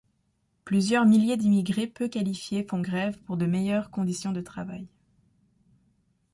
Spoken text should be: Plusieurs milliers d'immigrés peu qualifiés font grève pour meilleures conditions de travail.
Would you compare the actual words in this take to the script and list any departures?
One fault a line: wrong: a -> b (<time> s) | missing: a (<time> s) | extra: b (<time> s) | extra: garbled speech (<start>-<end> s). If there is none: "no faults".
extra: de (3.3 s)